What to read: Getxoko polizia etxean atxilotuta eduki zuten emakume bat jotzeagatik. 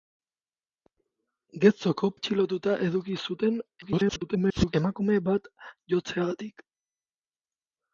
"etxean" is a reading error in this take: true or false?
true